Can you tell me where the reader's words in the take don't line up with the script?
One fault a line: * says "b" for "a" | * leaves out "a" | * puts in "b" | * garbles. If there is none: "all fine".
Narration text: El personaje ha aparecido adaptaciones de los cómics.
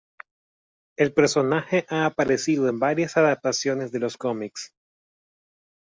* puts in "en varias"